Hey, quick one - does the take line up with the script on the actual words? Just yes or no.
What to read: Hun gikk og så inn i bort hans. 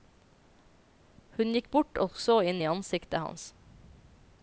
no